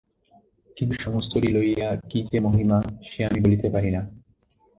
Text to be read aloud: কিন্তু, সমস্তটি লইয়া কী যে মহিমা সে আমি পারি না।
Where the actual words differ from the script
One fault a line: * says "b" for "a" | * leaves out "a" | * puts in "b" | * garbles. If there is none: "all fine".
* puts in "বলিতে"